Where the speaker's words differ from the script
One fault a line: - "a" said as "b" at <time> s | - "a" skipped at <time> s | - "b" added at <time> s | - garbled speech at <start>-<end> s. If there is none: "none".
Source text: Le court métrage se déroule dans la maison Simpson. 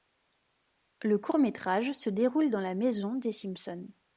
- "des" added at 3.1 s